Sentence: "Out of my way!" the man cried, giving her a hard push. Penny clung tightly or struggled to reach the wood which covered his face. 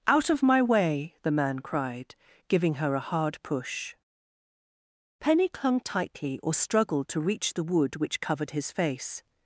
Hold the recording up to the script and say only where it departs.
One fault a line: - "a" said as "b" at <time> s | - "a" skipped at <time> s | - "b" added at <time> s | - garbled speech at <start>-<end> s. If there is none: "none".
none